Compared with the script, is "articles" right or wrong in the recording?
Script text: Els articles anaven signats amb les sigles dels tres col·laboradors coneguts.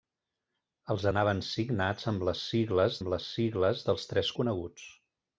wrong